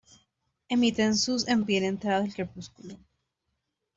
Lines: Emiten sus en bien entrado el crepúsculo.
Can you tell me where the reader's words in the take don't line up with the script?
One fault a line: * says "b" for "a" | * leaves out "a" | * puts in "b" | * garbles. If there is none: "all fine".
all fine